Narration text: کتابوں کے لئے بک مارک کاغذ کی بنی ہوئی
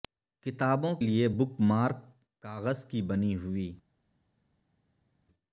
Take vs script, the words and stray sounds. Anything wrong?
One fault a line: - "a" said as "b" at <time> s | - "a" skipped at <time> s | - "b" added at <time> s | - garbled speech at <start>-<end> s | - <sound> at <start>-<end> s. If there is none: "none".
- "کے" skipped at 0.9 s